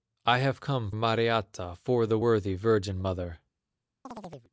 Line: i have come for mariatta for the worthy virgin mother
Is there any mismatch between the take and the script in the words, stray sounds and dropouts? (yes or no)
yes